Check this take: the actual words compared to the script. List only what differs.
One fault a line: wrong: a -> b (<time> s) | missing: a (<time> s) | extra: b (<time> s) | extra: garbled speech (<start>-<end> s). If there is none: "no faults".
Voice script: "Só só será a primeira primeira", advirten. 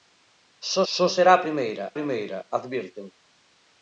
no faults